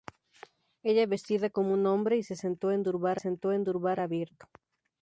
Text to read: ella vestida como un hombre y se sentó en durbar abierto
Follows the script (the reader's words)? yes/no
no